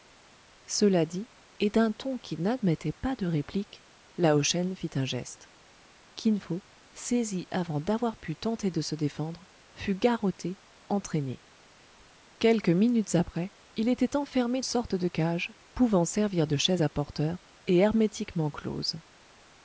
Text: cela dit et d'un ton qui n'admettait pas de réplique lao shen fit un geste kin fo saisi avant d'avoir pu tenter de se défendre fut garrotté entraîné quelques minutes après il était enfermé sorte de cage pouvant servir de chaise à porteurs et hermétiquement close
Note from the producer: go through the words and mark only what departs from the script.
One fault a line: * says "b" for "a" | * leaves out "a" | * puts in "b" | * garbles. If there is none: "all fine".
all fine